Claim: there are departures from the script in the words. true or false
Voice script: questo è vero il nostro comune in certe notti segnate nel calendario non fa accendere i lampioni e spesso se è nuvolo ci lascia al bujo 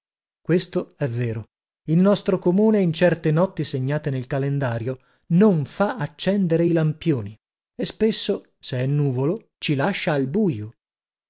false